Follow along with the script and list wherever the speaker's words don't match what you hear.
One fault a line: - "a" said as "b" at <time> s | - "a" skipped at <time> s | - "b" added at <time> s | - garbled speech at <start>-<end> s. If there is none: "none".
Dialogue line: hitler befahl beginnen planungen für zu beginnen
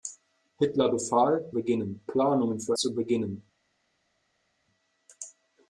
none